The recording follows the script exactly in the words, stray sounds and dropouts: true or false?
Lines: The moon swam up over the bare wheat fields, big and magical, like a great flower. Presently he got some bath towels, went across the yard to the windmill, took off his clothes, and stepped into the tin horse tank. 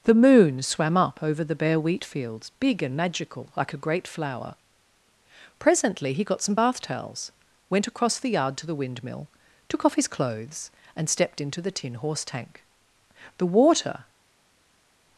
false